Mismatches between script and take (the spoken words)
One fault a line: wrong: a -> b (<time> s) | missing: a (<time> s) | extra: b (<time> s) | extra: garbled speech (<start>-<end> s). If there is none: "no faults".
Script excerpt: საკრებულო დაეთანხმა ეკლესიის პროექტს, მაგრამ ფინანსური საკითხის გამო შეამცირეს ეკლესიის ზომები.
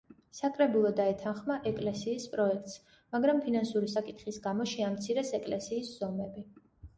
no faults